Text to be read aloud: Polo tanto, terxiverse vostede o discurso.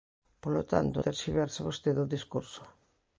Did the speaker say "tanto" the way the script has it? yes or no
yes